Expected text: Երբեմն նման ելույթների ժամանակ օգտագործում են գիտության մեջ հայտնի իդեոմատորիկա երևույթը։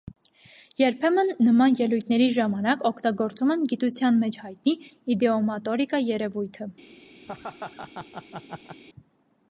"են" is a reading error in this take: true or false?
false